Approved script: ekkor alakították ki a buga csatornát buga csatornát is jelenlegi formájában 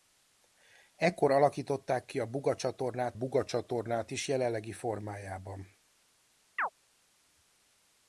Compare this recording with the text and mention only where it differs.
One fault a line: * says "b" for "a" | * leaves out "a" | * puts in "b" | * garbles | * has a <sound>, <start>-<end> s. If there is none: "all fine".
* has a chirp, 6.6-6.7 s